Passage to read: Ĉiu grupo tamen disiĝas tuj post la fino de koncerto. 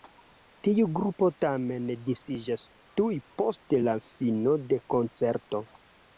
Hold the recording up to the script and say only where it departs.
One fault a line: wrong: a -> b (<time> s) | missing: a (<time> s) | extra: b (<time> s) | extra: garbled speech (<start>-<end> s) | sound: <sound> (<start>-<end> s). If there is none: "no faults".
wrong: Ĉiu -> Tiu (0.7 s)
sound: dropout (2.2-2.3 s)